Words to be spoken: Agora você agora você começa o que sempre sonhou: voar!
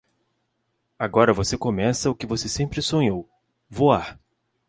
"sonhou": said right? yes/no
yes